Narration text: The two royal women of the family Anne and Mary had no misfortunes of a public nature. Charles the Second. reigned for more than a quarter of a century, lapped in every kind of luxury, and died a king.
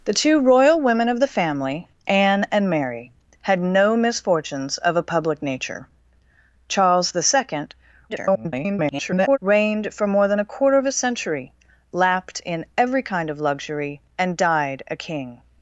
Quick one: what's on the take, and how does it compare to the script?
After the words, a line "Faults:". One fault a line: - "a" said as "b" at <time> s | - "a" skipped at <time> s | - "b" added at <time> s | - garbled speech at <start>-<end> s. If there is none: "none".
The two royal women of the family Anne and Mary had no misfortunes of a public nature. Charles the Second. [garbled] reigned for more than a quarter of a century, lapped in every kind of luxury, and died a king.
Faults:
- garbled speech at 8.1-9.4 s